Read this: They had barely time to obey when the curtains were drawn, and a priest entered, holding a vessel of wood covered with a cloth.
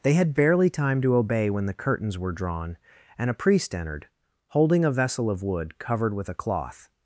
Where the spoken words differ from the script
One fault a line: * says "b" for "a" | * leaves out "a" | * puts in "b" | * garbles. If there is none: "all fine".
all fine